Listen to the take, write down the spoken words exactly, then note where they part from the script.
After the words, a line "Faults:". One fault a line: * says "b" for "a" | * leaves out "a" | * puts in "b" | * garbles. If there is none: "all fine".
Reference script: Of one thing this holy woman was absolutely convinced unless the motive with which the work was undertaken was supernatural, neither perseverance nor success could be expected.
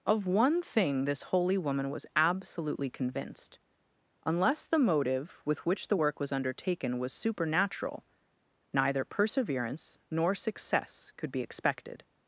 Of one thing this holy woman was absolutely convinced unless the motive with which the work was undertaken was supernatural, neither perseverance nor success could be expected.
Faults:
all fine